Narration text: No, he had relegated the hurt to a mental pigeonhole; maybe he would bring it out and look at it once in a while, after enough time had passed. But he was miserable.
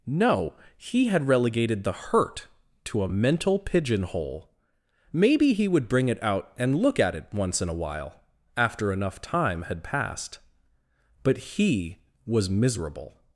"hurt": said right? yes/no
yes